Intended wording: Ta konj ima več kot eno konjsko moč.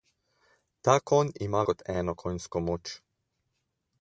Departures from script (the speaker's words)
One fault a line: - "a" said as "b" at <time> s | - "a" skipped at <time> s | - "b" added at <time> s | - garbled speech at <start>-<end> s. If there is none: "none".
- "več" skipped at 1.6 s